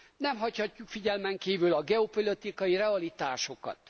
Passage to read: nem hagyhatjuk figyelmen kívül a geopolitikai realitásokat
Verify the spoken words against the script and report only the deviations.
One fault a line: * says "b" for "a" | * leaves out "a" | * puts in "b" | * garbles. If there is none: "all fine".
all fine